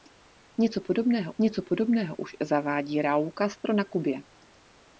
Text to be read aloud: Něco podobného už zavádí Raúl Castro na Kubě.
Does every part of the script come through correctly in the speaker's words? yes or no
no